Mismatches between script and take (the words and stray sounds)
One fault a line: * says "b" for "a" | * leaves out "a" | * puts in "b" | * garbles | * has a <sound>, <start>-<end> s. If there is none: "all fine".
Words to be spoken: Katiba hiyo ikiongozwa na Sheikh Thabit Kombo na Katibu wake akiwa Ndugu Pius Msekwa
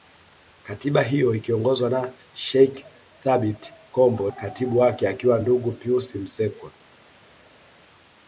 * leaves out "na"